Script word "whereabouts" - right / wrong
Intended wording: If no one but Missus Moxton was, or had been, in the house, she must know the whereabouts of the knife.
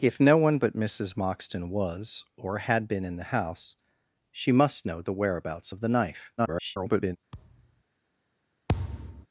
right